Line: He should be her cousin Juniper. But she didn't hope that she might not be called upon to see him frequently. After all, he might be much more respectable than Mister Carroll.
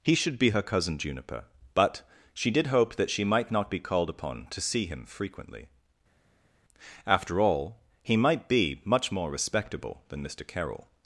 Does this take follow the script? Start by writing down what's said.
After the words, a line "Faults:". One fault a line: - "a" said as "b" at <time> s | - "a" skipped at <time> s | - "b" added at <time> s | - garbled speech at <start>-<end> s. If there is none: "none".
He should be her cousin Juniper. But she did hope that she might not be called upon to see him frequently. After all, he might be much more respectable than Mister Carroll.
Faults:
- "didn't" said as "did" at 2.5 s